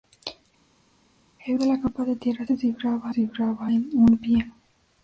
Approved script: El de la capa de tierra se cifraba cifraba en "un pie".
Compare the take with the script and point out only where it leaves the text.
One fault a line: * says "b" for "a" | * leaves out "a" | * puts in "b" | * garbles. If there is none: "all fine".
all fine